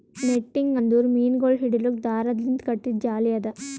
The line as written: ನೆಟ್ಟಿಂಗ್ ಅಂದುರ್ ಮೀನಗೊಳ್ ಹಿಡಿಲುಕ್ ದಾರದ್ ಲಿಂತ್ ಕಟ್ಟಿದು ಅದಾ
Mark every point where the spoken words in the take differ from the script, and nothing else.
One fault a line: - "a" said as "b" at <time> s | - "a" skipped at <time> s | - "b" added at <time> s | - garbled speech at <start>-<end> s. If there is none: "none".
- "ಜಾಲಿ" added at 3.0 s